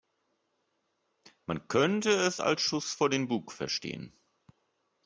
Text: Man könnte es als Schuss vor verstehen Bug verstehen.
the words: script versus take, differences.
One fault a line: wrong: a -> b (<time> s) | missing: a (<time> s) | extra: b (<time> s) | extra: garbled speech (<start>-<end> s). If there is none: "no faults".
wrong: verstehen -> den (3.1 s)